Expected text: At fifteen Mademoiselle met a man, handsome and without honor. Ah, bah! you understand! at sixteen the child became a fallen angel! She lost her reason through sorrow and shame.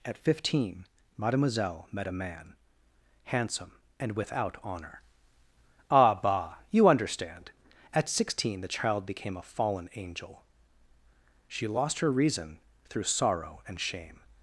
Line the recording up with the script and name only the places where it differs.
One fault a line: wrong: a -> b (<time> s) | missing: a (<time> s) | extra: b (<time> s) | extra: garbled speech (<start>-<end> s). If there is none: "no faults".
no faults